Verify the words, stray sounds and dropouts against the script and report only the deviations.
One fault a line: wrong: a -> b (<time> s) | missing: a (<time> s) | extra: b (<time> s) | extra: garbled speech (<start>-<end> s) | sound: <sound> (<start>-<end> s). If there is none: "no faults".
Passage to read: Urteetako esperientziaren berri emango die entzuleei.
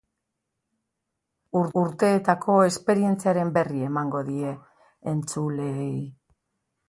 no faults